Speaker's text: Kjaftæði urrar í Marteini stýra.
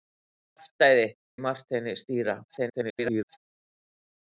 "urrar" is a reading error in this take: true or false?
true